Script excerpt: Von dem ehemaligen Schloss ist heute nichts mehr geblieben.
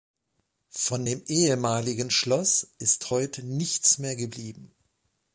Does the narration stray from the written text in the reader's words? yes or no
no